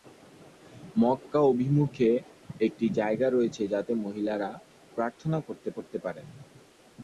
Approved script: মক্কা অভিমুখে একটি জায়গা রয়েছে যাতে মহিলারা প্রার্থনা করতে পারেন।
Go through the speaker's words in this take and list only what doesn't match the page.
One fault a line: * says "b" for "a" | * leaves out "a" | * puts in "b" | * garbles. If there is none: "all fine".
* puts in "করতে"